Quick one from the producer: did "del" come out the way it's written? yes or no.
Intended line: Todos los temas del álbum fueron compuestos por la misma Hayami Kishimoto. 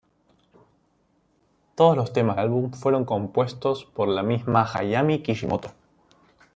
no